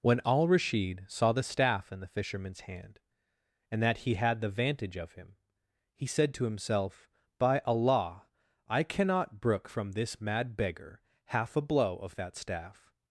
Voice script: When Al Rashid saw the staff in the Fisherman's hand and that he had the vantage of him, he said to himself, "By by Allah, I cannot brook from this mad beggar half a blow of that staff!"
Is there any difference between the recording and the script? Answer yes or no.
yes